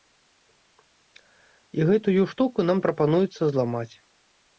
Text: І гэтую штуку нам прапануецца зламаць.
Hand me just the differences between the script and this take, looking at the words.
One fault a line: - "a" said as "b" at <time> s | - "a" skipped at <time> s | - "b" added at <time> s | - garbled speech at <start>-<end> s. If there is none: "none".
none